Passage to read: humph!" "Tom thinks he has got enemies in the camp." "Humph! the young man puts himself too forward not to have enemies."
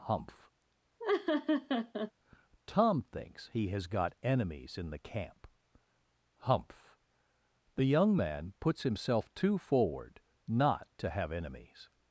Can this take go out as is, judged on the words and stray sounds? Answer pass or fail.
fail